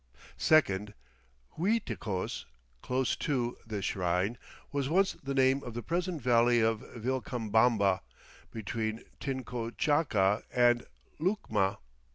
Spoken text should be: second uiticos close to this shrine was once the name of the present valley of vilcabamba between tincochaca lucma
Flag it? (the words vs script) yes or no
yes